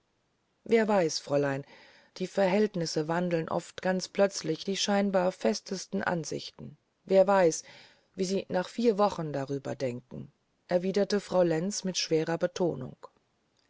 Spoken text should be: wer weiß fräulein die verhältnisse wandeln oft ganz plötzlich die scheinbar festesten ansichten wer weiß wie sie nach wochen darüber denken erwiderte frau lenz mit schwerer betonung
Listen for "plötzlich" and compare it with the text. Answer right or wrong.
right